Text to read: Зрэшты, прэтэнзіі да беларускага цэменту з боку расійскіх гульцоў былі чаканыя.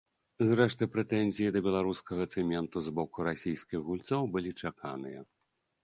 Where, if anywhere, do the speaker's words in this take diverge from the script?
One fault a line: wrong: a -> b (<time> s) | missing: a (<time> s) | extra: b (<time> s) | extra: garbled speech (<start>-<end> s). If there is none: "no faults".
no faults